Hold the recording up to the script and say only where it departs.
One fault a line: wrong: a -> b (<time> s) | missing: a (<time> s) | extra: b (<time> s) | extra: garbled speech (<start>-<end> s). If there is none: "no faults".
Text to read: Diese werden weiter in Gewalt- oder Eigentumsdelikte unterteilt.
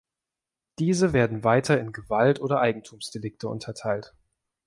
no faults